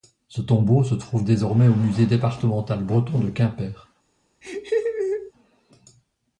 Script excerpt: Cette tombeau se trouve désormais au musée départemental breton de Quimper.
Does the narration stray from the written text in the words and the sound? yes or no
yes